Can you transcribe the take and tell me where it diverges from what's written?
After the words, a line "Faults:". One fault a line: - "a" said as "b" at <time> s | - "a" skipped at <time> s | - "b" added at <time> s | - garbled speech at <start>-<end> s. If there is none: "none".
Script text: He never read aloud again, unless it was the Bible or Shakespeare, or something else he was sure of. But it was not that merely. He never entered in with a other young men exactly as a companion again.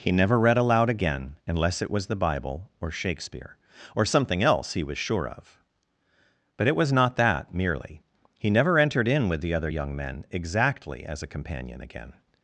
He never read aloud again, unless it was the Bible or Shakespeare, or something else he was sure of. But it was not that merely. He never entered in with the other young men exactly as a companion again.
Faults:
- "a" said as "the" at 9.4 s